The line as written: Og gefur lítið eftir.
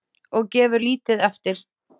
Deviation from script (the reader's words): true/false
false